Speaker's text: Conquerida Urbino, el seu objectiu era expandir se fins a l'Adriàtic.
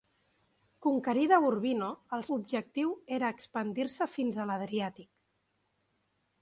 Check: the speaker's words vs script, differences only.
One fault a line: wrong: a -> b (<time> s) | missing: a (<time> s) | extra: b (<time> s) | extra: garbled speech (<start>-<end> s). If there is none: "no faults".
missing: seu (2.2 s)